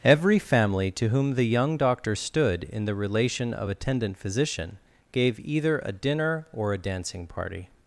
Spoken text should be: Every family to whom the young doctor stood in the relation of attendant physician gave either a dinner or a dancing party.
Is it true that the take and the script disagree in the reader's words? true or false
false